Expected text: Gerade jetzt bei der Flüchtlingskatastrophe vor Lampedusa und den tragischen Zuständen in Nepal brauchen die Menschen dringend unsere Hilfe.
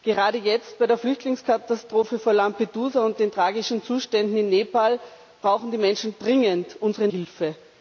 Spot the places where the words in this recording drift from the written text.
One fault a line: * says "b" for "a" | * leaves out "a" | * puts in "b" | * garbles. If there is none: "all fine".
all fine